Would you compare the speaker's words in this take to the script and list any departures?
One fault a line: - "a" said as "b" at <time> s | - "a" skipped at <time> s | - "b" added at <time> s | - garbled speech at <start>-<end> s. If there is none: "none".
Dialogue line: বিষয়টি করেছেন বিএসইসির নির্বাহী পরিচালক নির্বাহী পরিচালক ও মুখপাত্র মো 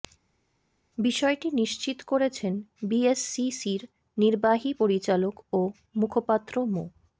- "নিশ্চিত" added at 1.5 s
- "নির্বাহী পরিচালক" skipped at 5.3 s